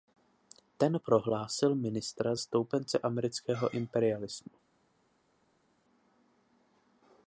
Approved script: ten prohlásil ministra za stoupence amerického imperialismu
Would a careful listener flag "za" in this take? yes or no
yes